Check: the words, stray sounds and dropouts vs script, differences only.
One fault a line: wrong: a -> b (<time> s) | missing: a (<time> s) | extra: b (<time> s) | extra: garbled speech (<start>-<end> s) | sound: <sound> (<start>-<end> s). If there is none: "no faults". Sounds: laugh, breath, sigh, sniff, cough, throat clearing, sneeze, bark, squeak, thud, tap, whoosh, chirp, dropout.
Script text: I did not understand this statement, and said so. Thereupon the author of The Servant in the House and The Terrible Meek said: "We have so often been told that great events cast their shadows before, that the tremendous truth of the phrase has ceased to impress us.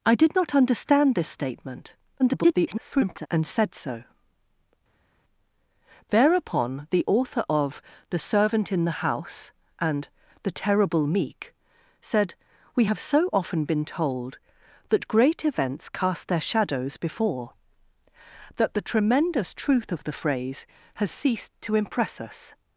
extra: garbled speech (2.2-3.3 s)